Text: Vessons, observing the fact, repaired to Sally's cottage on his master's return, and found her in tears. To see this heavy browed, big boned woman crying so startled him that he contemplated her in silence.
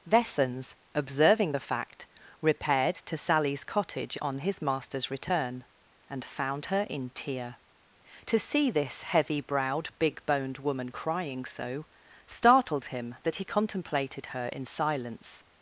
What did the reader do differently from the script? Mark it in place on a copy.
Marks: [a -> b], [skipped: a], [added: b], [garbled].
Vessons, observing the fact, repaired to Sally's cottage on his master's return, and found her in [tears. -> tear] To see this heavy browed, big boned woman crying so startled him that he contemplated her in silence.